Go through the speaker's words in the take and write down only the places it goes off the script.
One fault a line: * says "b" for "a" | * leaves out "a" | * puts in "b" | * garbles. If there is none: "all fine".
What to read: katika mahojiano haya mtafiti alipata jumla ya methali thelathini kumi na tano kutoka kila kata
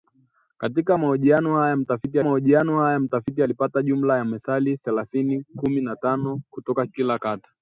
* puts in "mahojiano haya mtafiti"